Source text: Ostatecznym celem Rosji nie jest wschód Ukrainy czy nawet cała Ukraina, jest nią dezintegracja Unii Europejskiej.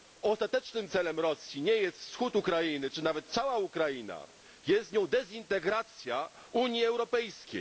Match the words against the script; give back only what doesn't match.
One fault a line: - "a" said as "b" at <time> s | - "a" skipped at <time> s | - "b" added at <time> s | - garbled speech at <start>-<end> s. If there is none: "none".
none